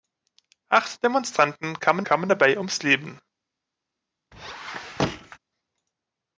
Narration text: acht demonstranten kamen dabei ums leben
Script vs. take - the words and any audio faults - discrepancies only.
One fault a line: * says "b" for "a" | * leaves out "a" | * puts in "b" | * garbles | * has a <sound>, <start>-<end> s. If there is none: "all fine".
* puts in "kamen"
* has a squeak, 4.3-5.4 s